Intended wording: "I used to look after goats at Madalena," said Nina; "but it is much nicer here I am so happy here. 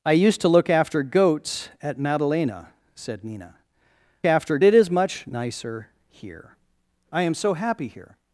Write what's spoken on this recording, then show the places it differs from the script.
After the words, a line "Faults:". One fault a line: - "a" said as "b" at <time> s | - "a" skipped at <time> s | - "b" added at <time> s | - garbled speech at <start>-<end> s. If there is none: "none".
"I used to look after goats at Madalena," said Nina; "after it is much nicer here I am so happy here.
Faults:
- "but" said as "after" at 4.2 s